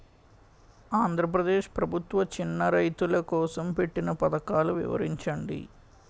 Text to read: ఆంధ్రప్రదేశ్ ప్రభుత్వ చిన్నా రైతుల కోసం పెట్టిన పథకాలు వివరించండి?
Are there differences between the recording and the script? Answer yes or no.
no